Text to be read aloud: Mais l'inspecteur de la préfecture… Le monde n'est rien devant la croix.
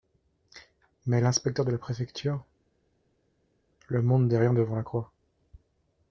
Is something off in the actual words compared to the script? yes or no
no